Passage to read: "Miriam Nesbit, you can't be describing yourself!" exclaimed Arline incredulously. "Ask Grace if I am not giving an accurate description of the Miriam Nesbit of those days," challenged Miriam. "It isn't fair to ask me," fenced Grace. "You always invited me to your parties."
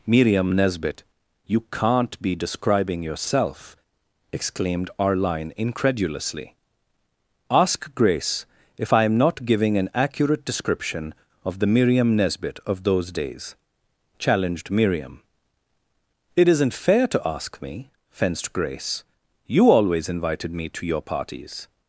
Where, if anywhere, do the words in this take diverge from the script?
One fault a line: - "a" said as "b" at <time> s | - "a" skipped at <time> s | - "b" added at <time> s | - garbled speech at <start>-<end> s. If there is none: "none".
none